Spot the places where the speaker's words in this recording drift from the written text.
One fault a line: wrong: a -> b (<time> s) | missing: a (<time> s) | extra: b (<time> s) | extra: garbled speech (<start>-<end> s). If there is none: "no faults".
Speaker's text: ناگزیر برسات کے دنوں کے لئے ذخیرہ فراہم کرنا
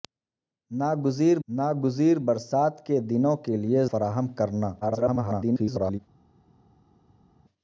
extra: ناگزیر (1.5 s)
missing: ذخیرہ (3.8 s)
extra: garbled speech (4.8-6.0 s)